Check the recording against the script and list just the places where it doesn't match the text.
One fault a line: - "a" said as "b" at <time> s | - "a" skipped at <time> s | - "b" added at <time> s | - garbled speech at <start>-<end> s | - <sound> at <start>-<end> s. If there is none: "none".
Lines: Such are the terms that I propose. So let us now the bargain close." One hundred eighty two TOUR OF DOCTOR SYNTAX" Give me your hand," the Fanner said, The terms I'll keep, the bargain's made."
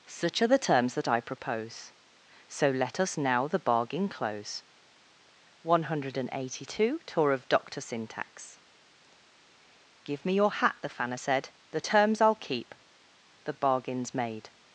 - "hand" said as "hat" at 10.5 s